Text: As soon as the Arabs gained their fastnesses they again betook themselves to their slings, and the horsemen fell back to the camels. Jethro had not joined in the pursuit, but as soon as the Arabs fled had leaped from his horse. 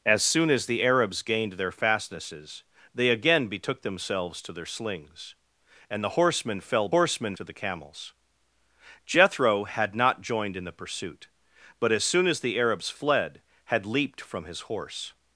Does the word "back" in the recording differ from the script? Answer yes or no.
yes